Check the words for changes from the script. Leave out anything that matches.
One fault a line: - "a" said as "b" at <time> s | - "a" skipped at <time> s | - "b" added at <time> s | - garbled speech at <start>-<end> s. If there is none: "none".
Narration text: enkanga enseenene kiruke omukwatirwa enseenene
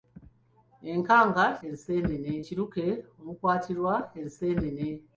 none